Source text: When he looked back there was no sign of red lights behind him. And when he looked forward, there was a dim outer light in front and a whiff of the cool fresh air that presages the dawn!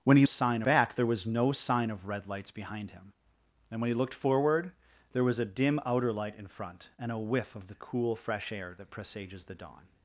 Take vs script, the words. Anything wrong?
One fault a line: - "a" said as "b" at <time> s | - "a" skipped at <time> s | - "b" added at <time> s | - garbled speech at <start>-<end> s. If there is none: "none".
- "looked" said as "sign" at 0.2 s